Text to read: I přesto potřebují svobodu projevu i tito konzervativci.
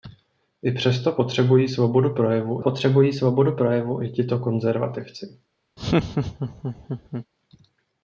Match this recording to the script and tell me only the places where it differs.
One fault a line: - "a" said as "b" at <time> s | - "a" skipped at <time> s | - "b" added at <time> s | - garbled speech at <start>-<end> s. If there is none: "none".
- "potřebují svobodu projevu" added at 2.6 s